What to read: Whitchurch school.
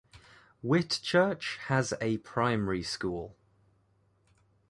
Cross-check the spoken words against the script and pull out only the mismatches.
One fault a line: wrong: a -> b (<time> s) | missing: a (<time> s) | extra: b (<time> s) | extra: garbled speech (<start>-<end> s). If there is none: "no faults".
extra: has a primary (1.7 s)